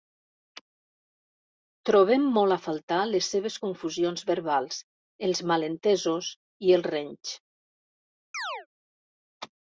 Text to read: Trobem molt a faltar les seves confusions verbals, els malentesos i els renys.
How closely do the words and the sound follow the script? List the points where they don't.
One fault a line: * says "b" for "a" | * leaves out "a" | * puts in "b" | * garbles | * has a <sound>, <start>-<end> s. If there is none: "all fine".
* has a chirp, 8.3-8.7 s